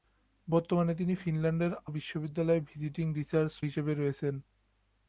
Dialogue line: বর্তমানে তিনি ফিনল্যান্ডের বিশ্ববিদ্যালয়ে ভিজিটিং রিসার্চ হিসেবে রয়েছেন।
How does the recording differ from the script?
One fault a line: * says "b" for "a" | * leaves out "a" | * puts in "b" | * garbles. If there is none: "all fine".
all fine